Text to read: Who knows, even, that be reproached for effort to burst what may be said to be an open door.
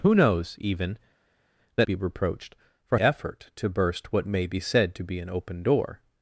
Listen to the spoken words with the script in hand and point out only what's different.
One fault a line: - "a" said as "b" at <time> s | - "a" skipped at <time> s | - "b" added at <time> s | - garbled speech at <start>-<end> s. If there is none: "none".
none